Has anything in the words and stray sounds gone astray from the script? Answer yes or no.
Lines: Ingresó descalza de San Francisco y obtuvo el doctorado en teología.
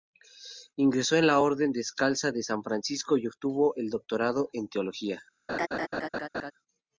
yes